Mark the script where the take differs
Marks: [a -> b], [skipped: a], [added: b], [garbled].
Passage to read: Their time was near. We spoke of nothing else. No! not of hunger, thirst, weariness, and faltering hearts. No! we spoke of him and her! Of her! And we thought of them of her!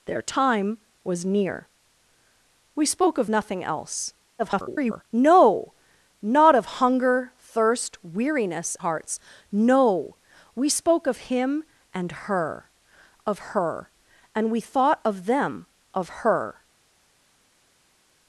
Their time was near. We spoke of nothing else. [garbled] No! not of hunger, thirst, weariness, [skipped: and faltering] hearts. No! we spoke of him and her! Of her! And we thought of them of her!